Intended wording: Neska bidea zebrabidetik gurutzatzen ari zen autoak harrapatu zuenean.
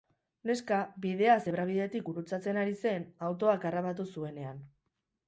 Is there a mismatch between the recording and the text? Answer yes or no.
no